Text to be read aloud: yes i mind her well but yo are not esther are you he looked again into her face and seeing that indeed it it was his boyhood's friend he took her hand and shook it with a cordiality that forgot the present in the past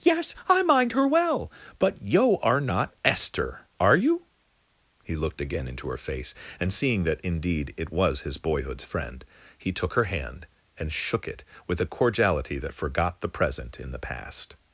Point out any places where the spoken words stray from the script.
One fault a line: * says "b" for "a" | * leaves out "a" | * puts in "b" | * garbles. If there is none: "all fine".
* leaves out "it"